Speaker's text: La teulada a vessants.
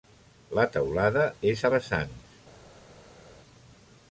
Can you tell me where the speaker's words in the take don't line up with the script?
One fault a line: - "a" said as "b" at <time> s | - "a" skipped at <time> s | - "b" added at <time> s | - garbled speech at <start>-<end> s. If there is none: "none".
- "és" added at 1.5 s